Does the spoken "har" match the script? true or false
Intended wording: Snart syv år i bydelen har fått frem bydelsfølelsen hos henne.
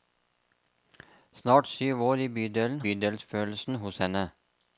false